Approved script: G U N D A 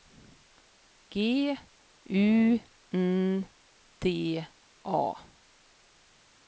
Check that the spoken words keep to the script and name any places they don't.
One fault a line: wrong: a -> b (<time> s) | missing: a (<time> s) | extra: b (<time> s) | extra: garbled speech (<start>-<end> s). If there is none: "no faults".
no faults